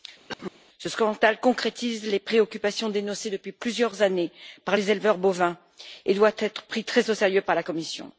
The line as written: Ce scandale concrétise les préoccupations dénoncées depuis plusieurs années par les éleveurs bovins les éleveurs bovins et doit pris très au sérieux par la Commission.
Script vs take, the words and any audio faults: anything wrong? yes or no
yes